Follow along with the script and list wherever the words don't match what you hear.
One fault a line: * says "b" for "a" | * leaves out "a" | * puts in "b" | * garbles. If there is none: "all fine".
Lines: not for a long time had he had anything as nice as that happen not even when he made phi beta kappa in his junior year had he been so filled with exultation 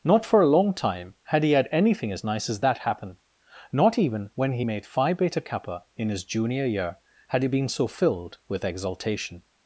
all fine